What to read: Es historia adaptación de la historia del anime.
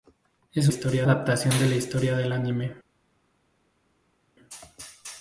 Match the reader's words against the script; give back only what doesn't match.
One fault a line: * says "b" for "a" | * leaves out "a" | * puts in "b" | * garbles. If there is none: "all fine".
all fine